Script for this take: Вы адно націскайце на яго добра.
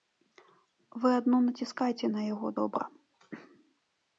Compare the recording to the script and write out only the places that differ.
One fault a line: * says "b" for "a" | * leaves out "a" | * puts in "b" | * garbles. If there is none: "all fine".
all fine